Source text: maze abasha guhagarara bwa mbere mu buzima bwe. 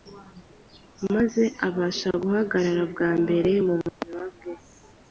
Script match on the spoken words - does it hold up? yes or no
yes